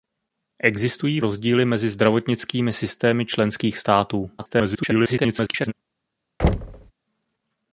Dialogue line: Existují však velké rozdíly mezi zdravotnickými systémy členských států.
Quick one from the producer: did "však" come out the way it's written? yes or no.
no